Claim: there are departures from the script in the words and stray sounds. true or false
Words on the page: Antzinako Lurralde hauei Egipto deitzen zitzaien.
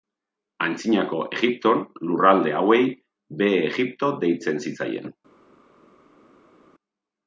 true